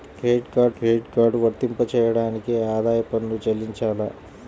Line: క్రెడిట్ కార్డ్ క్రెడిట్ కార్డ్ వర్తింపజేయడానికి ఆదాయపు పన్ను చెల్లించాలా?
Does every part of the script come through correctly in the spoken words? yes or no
yes